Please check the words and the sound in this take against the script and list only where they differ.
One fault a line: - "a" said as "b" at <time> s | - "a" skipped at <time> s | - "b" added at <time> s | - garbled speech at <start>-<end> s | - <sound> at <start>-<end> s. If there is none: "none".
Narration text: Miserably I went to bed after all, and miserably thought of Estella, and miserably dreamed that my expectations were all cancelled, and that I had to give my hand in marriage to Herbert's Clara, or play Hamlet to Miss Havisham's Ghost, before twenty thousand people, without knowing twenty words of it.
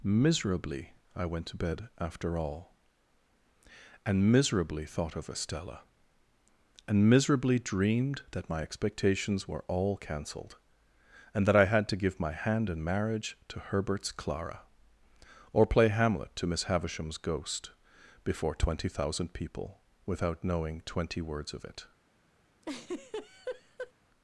- laugh at 22.6-23.9 s